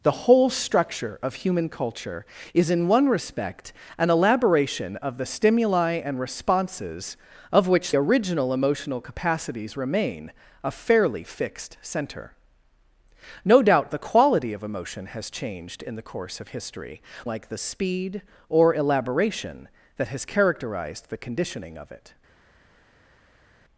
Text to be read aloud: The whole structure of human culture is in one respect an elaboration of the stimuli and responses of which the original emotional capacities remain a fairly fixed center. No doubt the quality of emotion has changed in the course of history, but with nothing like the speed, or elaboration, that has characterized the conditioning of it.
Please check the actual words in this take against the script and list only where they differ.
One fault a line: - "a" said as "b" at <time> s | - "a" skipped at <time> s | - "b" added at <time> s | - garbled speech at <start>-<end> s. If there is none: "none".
- "the" skipped at 7.9 s
- "but with nothing" skipped at 17.0 s